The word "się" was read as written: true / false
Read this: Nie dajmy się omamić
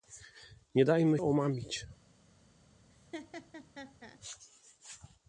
false